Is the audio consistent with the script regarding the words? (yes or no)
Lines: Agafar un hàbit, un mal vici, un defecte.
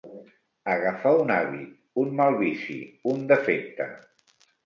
yes